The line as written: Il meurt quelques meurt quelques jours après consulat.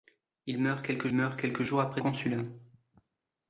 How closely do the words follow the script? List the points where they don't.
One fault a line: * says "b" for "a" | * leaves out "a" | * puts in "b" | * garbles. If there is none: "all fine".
all fine